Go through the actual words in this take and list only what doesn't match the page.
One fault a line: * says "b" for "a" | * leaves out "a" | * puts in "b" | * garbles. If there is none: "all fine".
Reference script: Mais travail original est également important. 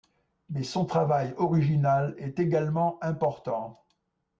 * puts in "son"